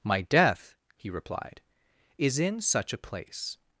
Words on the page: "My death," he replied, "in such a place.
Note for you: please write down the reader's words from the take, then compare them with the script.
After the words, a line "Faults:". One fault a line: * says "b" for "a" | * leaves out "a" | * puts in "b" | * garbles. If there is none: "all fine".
"My death," he replied, "is in such a place.
Faults:
* puts in "is"